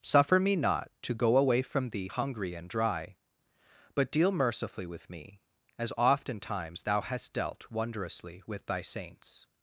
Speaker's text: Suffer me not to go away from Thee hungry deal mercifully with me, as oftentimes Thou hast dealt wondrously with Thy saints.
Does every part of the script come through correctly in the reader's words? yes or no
no